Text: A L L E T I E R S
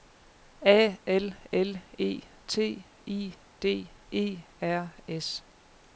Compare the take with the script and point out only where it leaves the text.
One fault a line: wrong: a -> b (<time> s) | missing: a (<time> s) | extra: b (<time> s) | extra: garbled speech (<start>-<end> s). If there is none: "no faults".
extra: D (3.6 s)